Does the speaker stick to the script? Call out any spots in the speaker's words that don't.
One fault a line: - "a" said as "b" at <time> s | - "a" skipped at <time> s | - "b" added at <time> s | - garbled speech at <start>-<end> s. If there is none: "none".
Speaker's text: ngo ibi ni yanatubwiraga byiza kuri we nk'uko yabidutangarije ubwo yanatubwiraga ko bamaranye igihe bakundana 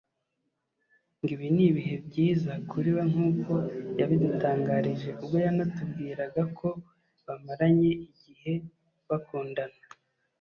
- "yanatubwiraga" said as "ibihe" at 1.7 s